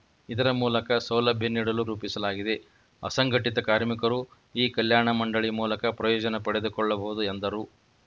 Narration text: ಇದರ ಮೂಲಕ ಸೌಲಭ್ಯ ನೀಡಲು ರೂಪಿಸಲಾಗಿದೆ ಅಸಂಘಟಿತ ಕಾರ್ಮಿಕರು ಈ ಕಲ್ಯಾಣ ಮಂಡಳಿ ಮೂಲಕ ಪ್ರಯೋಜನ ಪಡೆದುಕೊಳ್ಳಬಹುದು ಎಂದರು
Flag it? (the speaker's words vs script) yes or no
no